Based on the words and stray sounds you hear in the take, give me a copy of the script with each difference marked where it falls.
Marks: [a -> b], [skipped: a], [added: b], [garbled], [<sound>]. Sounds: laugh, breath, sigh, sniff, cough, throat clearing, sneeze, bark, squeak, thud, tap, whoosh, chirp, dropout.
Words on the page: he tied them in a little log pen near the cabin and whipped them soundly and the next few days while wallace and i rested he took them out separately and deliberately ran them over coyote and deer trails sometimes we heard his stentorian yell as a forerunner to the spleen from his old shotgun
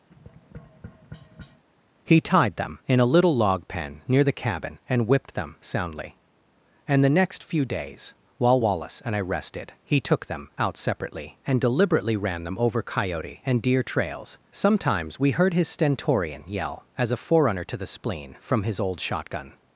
[tap] he tied them in a little log pen near the cabin and whipped them soundly and the next few days while wallace and i rested he took them out separately and deliberately ran them over coyote and deer trails sometimes we heard his stentorian yell as a forerunner to the spleen from his old shotgun